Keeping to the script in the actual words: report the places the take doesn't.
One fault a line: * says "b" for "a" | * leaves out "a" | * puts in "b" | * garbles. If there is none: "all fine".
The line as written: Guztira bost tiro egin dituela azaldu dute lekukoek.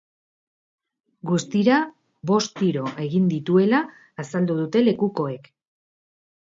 all fine